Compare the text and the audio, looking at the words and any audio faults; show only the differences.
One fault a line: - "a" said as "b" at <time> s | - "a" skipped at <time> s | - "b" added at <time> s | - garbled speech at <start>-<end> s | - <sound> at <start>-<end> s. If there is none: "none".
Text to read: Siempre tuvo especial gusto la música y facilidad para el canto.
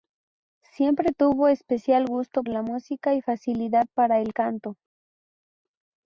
none